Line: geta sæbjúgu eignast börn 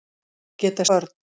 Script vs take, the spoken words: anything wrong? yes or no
yes